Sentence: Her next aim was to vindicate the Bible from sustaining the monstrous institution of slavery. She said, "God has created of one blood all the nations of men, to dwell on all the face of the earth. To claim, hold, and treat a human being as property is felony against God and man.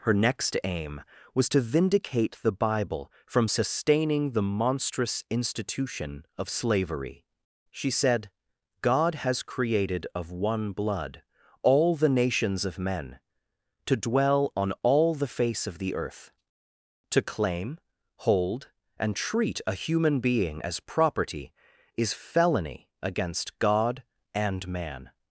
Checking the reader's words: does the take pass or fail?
pass